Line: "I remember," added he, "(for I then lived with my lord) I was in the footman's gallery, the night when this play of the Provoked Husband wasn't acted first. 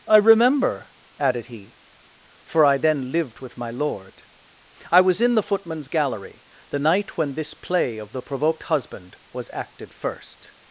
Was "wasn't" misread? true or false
true